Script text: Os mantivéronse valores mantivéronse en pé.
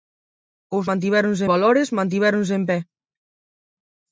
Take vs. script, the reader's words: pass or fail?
pass